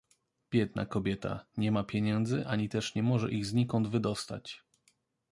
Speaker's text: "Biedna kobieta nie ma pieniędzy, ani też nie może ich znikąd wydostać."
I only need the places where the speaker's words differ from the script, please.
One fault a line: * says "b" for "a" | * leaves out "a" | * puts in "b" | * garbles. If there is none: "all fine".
all fine